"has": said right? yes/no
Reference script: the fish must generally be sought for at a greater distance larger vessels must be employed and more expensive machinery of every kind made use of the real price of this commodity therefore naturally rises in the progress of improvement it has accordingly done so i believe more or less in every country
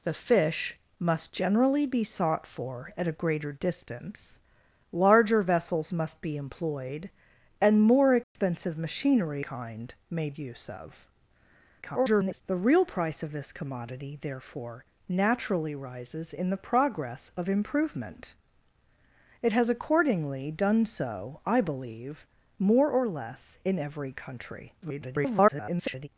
yes